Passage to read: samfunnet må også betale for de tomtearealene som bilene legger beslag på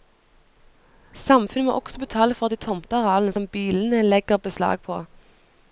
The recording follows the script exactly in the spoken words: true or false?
true